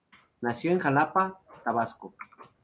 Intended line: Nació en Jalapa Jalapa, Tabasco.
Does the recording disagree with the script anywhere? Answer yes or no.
yes